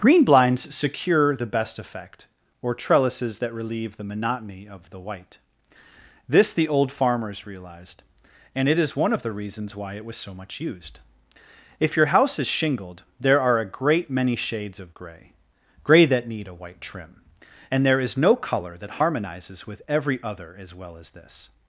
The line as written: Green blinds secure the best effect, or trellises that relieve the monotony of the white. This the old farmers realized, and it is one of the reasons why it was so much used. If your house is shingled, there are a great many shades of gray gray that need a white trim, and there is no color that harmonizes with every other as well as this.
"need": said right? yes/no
yes